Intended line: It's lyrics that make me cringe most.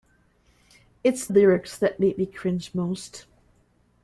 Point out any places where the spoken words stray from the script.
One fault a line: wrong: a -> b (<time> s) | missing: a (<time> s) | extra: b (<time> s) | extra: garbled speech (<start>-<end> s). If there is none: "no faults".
no faults